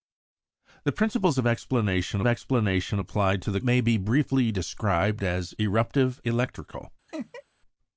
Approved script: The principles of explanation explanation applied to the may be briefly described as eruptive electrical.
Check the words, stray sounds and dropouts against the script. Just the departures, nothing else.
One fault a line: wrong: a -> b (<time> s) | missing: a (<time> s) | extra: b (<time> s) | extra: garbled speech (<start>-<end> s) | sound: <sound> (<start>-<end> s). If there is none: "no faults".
sound: laugh (7.1-7.4 s)